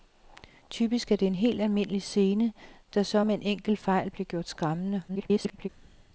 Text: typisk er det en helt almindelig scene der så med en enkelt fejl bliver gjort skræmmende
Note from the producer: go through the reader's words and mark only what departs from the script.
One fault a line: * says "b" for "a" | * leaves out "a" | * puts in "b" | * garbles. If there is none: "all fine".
* garbles